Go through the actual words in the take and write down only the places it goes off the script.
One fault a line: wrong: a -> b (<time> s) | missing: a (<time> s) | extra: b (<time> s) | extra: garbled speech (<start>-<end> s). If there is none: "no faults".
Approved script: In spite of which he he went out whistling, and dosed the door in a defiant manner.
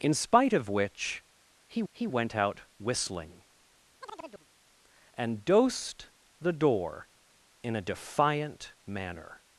no faults